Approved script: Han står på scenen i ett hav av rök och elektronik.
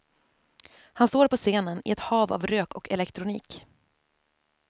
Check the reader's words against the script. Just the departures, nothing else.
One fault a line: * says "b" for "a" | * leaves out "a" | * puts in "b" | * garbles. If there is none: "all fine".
all fine